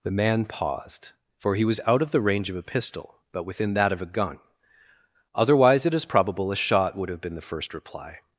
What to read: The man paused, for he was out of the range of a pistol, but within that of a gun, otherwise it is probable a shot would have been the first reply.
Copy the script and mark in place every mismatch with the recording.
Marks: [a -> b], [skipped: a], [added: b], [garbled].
The man paused, for he was out of the range of a pistol, but within that of a gun, otherwise it is probable a shot would have been the first reply.